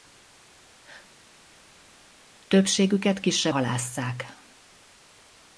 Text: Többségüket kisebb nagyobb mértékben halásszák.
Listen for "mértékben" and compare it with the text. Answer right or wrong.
wrong